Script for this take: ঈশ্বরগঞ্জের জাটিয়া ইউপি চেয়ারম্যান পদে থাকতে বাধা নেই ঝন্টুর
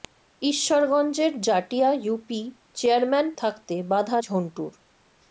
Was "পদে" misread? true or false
true